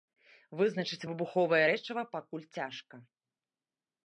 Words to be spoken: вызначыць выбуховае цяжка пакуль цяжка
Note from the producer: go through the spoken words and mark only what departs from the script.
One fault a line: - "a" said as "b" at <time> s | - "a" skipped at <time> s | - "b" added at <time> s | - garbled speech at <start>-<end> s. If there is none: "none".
- "цяжка" said as "рэчыва" at 1.7 s